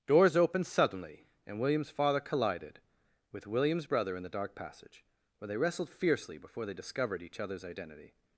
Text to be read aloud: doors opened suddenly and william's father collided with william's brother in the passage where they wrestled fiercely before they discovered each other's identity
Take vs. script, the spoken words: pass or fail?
fail